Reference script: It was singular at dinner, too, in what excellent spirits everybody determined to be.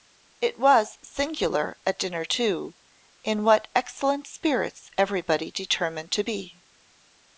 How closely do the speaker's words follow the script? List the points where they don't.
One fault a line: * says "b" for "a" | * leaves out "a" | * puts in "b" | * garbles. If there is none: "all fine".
all fine